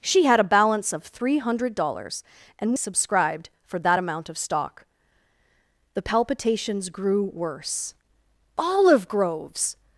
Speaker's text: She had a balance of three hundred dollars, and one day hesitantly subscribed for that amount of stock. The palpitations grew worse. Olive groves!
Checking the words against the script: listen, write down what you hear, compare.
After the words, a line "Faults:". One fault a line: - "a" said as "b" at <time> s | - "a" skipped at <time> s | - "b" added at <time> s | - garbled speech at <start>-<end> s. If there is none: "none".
She had a balance of three hundred dollars, and subscribed for that amount of stock. The palpitations grew worse. Olive groves!
Faults:
- "one day hesitantly" skipped at 2.8 s